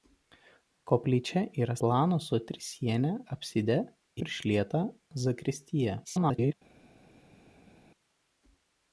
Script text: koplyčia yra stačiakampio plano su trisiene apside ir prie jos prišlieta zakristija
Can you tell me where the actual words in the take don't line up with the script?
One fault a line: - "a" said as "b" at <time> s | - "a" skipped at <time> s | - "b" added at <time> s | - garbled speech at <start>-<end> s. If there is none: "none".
- "stačiakampio" skipped at 1.7 s
- "ir prie jos" skipped at 3.8 s
- garbled speech at 6.0-6.5 s